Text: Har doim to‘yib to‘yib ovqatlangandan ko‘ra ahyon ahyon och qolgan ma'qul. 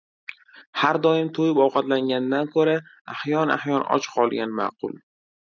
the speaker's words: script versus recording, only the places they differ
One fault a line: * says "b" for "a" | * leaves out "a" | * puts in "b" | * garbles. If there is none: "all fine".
* leaves out "to‘yib"